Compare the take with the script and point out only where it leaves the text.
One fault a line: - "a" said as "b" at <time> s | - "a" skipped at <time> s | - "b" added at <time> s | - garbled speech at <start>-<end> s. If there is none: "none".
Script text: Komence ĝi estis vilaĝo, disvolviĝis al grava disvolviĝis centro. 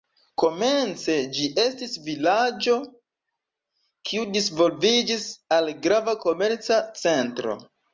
- "kiu" added at 4.1 s
- "disvolviĝis" said as "komerca" at 6.3 s